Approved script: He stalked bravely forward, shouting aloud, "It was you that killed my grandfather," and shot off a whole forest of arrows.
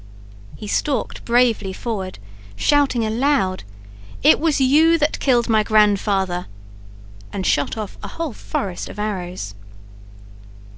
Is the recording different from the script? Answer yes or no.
no